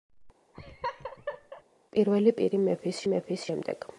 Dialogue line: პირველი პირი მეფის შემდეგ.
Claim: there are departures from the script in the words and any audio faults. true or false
true